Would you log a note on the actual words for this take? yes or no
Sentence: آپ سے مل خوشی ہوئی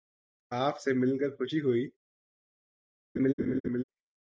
yes